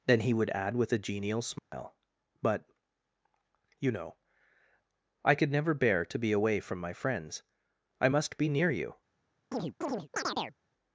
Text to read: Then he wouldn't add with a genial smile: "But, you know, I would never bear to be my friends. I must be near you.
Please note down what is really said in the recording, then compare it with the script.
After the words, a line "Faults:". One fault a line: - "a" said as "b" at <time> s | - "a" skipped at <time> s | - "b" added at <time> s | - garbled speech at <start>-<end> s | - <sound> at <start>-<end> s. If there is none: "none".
Then he would add with a genial smile: "But, you know, I could never bear to be away from my friends. I must be near you.
Faults:
- "wouldn't" said as "would" at 0.3 s
- dropout at 1.6-1.7 s
- "would" said as "could" at 5.3 s
- "away from" added at 6.3 s
- chirp at 9.5-10.6 s